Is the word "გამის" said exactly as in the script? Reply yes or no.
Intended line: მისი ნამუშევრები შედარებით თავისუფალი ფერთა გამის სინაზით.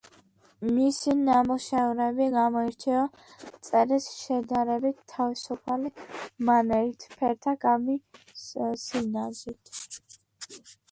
yes